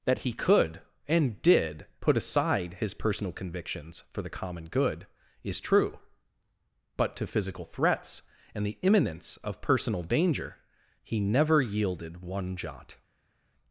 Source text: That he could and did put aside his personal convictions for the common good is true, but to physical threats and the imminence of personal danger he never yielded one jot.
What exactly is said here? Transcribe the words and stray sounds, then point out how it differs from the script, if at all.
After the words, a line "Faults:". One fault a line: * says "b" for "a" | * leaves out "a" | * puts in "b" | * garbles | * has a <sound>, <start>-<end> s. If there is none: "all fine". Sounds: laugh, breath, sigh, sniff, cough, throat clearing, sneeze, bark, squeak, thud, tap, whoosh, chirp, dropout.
That he could and did put aside his personal convictions for the common good is true, but to physical threats and the imminence of personal danger he never yielded one jot.
Faults:
all fine